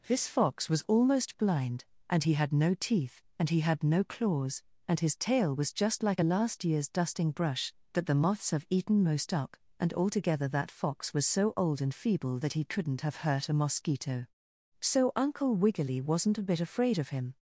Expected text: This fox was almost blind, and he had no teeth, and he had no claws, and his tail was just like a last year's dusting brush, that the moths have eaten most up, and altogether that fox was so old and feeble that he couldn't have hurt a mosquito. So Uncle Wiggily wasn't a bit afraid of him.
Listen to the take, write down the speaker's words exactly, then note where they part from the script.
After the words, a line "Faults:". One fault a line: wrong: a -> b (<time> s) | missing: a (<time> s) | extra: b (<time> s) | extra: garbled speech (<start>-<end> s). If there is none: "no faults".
This fox was almost blind, and he had no teeth, and he had no claws, and his tail was just like a last year's dusting brush, that the moths have eaten most up, and altogether that fox was so old and feeble that he couldn't have hurt a mosquito. So Uncle Wiggily wasn't a bit afraid of him.
Faults:
no faults